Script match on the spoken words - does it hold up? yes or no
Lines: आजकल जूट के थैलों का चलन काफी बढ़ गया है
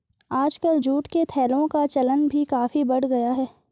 no